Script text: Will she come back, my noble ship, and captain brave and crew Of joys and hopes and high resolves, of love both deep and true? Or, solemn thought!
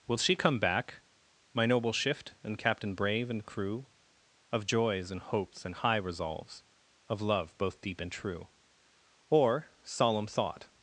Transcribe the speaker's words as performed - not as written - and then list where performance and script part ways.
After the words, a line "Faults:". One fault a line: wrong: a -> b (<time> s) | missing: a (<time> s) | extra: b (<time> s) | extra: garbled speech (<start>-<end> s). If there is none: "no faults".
Will she come back, my noble shift, and captain brave and crew Of joys and hopes and high resolves, of love both deep and true? Or, solemn thought!
Faults:
wrong: ship -> shift (1.9 s)